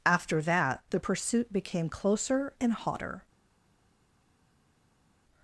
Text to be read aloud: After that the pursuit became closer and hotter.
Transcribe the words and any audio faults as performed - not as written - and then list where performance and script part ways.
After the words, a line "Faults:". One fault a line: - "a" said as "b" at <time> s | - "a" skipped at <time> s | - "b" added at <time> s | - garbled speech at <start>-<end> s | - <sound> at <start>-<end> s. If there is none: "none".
After that the pursuit became closer and hotter.
Faults:
none